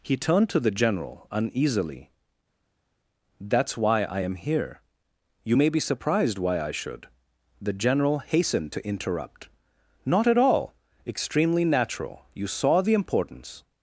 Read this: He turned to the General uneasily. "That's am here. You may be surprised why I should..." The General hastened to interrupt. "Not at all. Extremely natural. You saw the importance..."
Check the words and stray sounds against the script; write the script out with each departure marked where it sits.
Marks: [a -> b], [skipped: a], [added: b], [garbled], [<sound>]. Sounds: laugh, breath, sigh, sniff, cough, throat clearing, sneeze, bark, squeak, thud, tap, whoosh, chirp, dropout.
He turned to the General uneasily. "That's [added: why I] am here. You may be surprised why I should..." The General hastened to interrupt. "Not at all. Extremely natural. You saw the importance..."